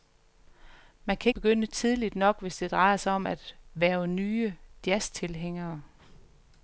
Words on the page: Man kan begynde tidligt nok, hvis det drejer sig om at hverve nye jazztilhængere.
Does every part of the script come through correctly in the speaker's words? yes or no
yes